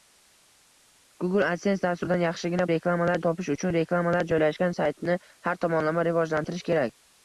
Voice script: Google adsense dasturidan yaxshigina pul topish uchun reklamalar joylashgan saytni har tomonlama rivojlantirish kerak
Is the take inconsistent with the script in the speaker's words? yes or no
yes